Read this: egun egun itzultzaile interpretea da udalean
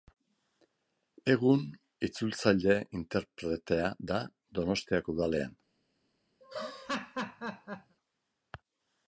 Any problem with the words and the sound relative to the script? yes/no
yes